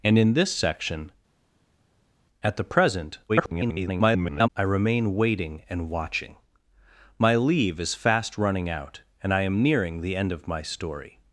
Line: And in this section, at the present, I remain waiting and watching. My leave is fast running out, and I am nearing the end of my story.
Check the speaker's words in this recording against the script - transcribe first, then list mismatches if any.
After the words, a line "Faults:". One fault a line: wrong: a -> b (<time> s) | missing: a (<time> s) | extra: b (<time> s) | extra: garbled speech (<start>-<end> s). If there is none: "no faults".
And in this section, at the present, [garbled] I remain waiting and watching. My leave is fast running out, and I am nearing the end of my story.
Faults:
extra: garbled speech (3.3-4.5 s)